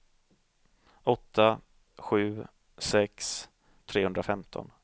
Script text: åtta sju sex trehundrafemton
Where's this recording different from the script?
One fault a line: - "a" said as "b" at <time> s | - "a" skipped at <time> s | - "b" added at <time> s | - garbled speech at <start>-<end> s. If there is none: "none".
none